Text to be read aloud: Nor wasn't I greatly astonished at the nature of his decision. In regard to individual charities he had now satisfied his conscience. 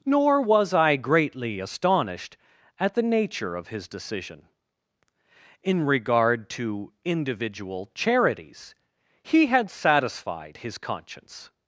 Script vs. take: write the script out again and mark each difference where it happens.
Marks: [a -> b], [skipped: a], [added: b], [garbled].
Nor [wasn't -> was] I greatly astonished at the nature of his decision. In regard to individual charities he had [skipped: now] satisfied his conscience.